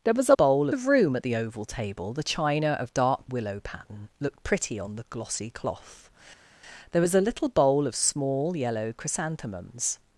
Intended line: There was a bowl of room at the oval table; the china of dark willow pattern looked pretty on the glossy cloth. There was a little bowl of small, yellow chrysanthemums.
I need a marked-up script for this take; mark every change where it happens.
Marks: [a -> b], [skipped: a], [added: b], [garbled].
There was a bowl of room at the oval table; the china of dark willow pattern looked pretty on the glossy cloth. There was a little bowl of small, yellow chrysanthemums.